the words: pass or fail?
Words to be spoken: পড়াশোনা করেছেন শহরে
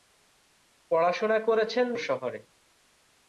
pass